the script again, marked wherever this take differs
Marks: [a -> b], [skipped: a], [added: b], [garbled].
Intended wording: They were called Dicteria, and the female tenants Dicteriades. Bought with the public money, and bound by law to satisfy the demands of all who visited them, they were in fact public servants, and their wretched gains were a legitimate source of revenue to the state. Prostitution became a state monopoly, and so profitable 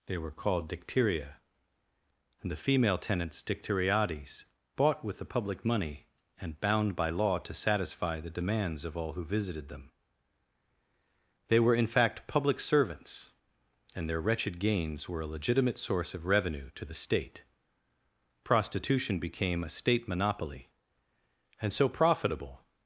They were called Dicteria, and the female tenants Dicteriades. Bought with the public money, and bound by law to satisfy the demands of all who visited them, they were in fact public servants, and their wretched gains were a legitimate source of revenue to the state. Prostitution became a state monopoly, and so profitable